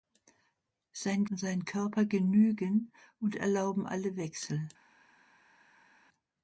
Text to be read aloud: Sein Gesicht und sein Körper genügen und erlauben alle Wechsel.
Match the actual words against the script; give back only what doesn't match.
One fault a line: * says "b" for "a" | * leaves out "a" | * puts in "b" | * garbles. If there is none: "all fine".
* leaves out "Gesicht"